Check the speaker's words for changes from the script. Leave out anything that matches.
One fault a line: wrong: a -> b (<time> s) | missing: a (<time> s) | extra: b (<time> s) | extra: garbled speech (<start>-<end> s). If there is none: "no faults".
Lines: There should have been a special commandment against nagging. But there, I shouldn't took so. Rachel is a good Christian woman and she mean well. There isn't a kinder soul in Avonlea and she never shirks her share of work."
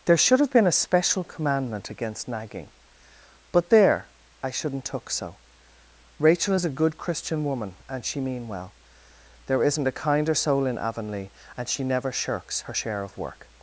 no faults